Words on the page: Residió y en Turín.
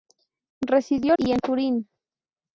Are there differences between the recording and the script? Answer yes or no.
no